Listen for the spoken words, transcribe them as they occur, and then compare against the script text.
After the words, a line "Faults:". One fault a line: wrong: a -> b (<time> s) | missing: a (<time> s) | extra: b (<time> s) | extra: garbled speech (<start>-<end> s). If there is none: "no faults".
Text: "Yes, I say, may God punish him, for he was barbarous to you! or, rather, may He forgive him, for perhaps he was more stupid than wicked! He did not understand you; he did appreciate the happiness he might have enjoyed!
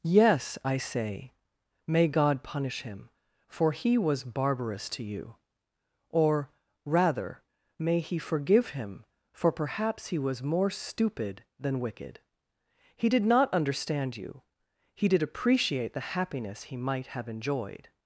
"Yes, I say, may God punish him, for he was barbarous to you! or, rather, may He forgive him, for perhaps he was more stupid than wicked! He did not understand you; he did appreciate the happiness he might have enjoyed!
Faults:
no faults